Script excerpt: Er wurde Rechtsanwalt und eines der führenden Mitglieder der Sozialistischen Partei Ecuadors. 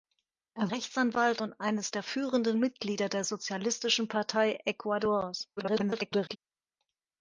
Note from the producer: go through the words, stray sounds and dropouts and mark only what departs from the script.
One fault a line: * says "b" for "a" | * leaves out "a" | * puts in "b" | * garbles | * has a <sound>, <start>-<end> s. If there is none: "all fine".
* leaves out "wurde"
* garbles